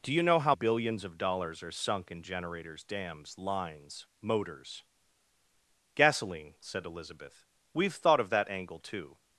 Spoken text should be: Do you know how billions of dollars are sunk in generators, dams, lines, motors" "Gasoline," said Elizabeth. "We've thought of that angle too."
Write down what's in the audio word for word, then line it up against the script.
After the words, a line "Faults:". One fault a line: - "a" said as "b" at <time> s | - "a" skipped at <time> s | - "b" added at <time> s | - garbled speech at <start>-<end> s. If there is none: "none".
Do you know how billions of dollars are sunk in generators, dams, lines, motors" "Gasoline," said Elizabeth. "We've thought of that angle too."
Faults:
none